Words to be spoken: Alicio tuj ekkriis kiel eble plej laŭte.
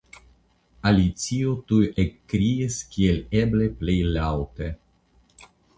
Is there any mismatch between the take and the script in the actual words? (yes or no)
no